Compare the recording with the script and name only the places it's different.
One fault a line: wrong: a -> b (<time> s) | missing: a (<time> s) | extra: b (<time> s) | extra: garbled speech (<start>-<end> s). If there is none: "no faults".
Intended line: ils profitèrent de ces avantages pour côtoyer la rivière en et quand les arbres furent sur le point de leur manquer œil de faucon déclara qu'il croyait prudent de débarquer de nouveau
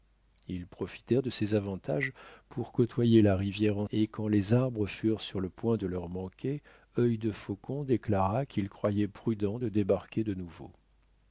no faults